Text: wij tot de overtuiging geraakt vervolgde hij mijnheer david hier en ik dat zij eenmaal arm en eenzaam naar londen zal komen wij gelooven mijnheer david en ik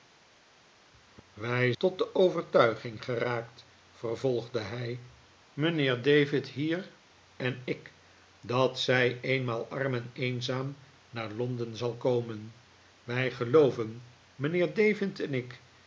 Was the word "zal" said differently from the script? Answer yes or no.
no